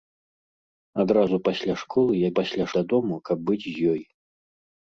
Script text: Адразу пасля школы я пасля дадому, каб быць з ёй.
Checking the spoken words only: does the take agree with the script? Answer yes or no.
yes